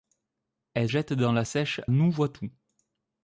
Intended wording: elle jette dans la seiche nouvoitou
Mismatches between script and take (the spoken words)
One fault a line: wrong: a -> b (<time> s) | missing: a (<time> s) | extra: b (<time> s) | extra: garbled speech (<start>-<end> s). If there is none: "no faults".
no faults